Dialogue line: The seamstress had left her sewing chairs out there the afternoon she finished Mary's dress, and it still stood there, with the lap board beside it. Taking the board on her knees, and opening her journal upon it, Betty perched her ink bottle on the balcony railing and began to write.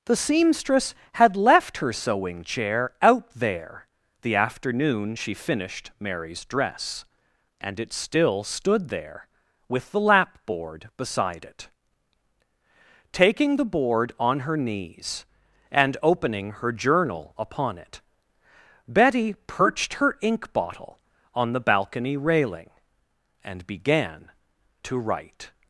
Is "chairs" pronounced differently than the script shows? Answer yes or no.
yes